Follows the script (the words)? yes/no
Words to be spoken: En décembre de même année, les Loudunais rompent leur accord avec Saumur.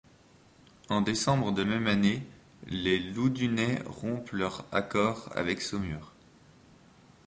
yes